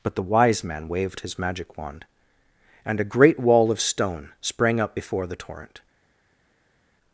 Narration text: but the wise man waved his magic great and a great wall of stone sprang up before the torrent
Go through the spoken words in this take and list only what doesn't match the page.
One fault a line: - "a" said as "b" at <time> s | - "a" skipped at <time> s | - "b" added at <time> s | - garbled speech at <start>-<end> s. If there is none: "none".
- "great" said as "wand" at 1.8 s